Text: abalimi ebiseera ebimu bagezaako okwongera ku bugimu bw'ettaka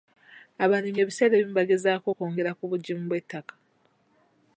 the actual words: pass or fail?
pass